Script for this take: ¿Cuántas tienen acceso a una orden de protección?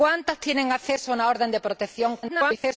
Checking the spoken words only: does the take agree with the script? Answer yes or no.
no